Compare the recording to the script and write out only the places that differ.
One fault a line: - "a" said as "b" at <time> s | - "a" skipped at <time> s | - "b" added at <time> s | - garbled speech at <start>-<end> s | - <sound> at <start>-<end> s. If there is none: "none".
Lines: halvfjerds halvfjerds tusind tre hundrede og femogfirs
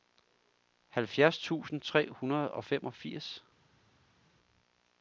- "halvfjerds" skipped at 1.4 s